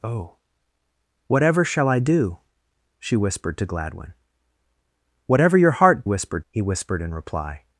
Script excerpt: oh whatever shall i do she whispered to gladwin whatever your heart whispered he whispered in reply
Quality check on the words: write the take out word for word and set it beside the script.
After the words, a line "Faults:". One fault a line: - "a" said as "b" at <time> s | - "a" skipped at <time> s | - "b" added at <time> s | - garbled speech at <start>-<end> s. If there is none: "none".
oh whatever shall i do she whispered to gladwin whatever your heart whispered he whispered in reply
Faults:
none